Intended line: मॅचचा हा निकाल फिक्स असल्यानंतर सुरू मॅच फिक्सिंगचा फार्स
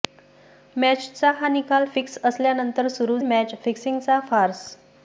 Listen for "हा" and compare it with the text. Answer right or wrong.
right